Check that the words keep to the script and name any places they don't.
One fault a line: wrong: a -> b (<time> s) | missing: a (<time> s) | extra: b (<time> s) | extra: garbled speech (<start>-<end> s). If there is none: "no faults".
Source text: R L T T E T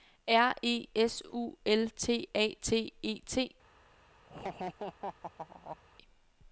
extra: E S U (0.6 s)
extra: A (2.3 s)